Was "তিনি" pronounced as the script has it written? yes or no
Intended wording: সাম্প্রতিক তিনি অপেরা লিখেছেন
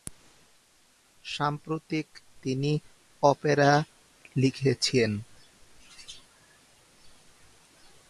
yes